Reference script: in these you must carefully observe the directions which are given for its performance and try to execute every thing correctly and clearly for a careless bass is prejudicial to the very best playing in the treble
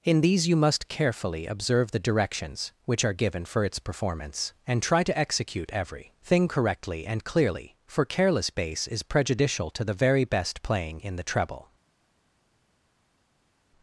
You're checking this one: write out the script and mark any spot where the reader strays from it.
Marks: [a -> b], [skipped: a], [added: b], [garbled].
in these you must carefully observe the directions which are given for its performance and try to execute every thing correctly and clearly for [skipped: a] careless bass is prejudicial to the very best playing in the treble